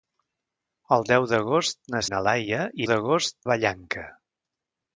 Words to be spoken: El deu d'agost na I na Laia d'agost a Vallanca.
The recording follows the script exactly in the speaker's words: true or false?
true